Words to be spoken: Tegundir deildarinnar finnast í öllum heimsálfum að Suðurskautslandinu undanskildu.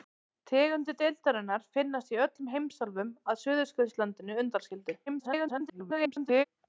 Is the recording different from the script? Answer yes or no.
yes